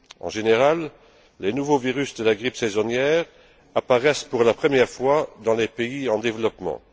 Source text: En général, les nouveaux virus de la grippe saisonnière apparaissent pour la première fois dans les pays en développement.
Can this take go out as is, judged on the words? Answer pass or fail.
pass